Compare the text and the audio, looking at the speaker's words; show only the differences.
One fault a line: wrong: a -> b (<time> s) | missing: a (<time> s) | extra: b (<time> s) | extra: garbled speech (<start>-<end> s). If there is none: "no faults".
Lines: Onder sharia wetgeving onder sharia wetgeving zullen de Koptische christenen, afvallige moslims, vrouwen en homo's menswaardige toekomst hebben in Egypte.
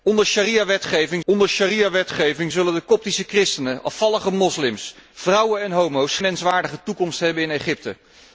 no faults